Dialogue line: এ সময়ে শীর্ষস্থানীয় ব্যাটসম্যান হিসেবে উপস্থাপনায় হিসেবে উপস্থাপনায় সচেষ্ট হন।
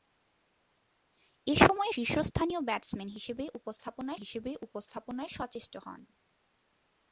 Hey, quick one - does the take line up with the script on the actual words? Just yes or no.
yes